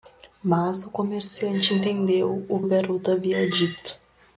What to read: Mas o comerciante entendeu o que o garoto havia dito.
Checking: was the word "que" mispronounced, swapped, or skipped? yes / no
yes